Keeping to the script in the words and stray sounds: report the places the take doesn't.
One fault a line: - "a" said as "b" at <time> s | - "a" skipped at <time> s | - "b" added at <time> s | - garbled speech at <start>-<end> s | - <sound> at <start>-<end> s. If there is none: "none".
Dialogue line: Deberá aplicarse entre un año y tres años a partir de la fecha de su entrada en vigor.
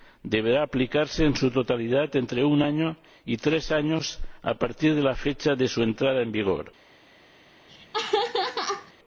- "en su totalidad" added at 1.2 s
- laugh at 7.7-8.9 s